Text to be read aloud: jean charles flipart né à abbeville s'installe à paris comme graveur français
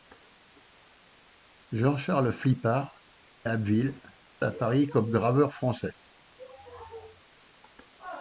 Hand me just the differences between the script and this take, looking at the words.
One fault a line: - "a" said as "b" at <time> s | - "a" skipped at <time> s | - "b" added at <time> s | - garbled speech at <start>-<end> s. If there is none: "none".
- "né" skipped at 3.0 s
- "s'installe" skipped at 4.0 s